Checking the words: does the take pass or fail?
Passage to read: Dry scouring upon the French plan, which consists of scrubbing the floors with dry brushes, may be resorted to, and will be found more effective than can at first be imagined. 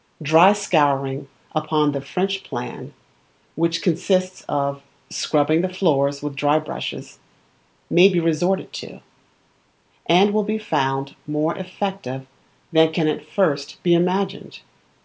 pass